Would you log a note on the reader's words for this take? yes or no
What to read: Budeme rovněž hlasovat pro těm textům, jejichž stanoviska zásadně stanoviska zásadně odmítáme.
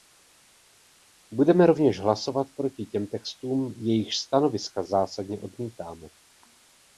yes